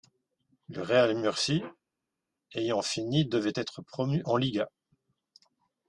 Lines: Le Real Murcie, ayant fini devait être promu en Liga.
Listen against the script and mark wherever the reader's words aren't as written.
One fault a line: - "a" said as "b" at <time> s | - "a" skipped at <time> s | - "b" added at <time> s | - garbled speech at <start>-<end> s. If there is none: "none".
none